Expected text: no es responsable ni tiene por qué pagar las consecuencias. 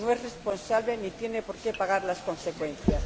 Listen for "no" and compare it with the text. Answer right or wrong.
right